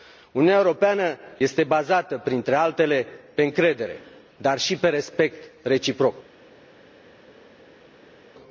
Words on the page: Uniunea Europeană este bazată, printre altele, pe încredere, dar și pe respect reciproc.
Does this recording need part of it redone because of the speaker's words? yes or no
no